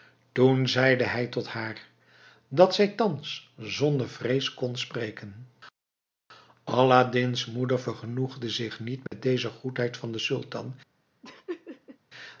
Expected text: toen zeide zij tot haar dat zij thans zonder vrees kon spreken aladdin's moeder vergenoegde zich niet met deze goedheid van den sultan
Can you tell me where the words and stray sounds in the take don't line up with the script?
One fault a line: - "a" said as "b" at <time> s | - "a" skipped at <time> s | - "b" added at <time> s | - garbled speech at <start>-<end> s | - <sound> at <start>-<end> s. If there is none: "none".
- "zij" said as "hij" at 1.0 s
- dropout at 9.1-9.1 s
- laugh at 11.2-12.0 s